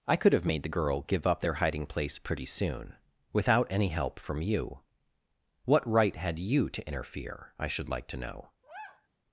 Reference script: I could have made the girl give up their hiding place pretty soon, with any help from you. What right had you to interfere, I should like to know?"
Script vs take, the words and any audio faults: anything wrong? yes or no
yes